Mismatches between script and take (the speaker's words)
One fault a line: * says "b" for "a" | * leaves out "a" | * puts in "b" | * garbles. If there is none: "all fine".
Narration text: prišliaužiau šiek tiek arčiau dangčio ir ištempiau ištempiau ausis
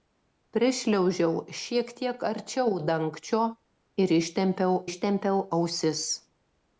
all fine